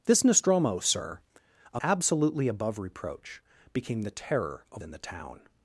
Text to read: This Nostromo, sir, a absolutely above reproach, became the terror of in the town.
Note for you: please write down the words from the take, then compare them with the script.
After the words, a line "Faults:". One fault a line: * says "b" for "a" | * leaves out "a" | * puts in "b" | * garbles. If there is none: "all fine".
This Nostromo, sir, a absolutely above reproach, became the terror of in the town.
Faults:
all fine